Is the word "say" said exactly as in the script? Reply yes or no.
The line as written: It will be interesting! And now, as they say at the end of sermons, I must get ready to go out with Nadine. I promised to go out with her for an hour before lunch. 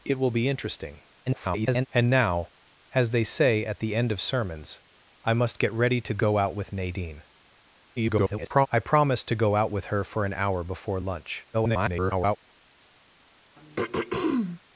yes